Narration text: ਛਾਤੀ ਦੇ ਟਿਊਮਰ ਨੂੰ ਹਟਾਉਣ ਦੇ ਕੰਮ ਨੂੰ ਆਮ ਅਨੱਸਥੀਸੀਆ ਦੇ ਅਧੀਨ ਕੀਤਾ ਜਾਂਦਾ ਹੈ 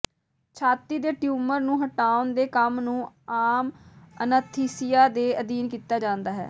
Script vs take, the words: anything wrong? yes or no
no